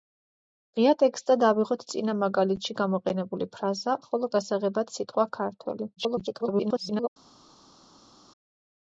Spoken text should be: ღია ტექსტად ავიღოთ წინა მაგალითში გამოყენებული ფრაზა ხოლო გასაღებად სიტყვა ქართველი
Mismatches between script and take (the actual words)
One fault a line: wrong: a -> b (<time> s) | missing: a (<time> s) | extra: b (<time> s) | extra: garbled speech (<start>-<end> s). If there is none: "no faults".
extra: garbled speech (6.0-7.1 s)